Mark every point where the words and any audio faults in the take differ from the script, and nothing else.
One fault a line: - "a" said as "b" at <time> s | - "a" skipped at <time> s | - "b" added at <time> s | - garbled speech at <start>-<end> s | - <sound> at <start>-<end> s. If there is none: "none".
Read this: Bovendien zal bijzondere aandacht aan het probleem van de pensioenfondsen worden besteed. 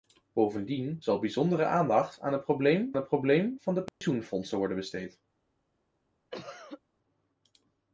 - "het probleem" added at 3.0 s
- dropout at 3.9-4.0 s
- cough at 6.3-6.8 s